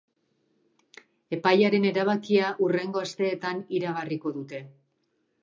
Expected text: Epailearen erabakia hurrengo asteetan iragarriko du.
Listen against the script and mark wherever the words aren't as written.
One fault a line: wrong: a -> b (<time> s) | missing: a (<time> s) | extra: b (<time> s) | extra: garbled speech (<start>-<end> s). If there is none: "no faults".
wrong: du -> dute (4.4 s)